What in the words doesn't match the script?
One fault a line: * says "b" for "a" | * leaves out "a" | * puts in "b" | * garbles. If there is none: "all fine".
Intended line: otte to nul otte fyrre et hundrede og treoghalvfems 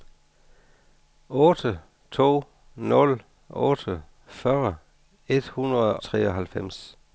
* leaves out "og"